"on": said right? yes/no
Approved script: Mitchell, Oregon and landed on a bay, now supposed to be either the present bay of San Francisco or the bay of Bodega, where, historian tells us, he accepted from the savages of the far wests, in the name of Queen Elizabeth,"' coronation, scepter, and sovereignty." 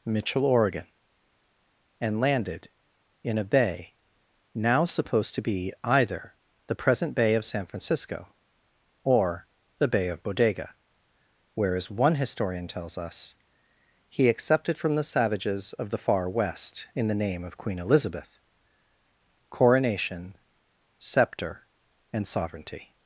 no